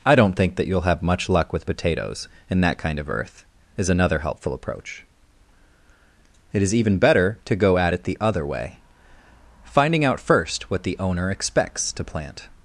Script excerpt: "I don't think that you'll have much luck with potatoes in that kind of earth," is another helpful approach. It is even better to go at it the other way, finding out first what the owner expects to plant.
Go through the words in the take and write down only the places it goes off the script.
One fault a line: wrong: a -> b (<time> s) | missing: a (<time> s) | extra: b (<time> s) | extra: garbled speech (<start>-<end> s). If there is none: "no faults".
no faults